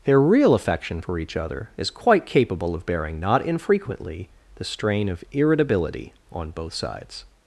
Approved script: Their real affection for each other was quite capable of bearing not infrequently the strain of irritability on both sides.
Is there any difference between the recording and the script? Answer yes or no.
yes